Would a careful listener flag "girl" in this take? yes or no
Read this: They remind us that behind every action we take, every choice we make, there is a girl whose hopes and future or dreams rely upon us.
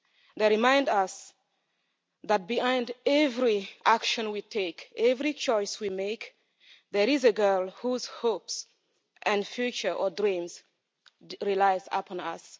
no